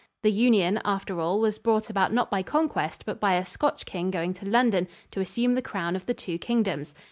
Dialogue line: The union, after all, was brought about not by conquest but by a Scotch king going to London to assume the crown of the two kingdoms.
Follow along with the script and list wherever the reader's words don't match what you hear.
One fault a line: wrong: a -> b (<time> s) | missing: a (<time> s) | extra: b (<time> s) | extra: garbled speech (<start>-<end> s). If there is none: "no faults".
no faults